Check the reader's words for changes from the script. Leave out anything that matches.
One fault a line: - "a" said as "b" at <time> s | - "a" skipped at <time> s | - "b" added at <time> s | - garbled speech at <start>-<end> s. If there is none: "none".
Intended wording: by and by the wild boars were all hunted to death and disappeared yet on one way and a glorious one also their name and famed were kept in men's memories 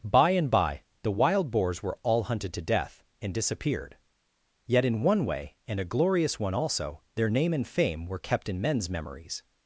- "on" said as "in" at 4.8 s
- "famed" said as "fame" at 7.7 s